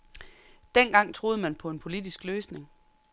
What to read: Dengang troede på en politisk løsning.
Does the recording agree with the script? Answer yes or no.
no